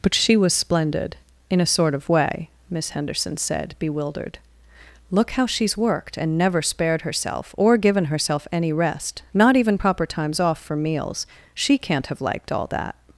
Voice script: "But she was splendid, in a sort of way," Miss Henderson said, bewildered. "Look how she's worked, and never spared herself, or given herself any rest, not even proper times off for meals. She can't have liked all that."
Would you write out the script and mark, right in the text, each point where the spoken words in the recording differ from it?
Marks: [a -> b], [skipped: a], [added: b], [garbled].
"But she was splendid, in a sort of way," Miss Henderson said, bewildered. "Look how she's worked, and never spared herself, or given herself any rest, not even proper times off for meals. She can't have liked all that."